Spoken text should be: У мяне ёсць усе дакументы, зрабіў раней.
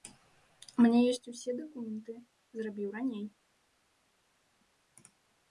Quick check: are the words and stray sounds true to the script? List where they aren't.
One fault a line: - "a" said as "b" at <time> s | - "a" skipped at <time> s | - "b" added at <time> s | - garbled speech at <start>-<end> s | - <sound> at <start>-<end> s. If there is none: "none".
none